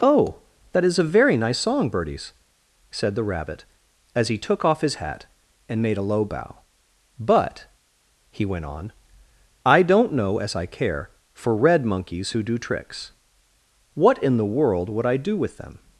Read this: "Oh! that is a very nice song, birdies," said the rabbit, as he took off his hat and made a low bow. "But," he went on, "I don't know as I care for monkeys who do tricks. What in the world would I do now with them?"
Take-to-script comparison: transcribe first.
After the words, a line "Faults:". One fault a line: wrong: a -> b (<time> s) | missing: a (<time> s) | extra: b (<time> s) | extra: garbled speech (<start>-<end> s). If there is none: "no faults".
"Oh! that is a very nice song, birdies," said the rabbit, as he took off his hat and made a low bow. "But," he went on, "I don't know as I care for red monkeys who do tricks. What in the world would I do with them?"
Faults:
extra: red (11.6 s)
missing: now (15.4 s)